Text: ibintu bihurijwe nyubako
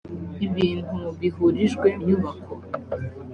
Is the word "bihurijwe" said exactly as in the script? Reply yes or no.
yes